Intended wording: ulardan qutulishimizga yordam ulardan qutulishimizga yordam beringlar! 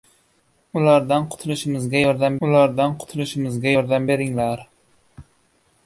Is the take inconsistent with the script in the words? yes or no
no